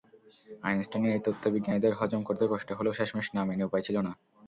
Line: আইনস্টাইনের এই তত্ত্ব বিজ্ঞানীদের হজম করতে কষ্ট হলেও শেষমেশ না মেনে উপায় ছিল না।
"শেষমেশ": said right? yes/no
yes